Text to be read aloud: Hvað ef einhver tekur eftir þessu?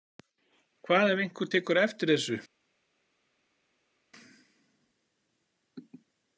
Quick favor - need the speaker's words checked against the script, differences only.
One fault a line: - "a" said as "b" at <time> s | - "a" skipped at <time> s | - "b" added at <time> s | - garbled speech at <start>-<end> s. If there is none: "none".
none